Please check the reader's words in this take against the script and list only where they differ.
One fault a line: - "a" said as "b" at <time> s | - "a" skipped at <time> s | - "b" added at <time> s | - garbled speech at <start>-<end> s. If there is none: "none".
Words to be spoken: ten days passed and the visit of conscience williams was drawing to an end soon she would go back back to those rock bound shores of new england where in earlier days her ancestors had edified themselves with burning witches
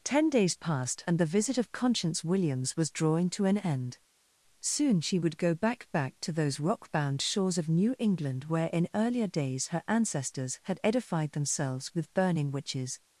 none